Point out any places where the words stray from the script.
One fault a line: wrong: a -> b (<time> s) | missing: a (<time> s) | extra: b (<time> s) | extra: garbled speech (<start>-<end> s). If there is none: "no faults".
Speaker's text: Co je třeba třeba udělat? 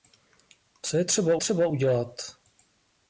no faults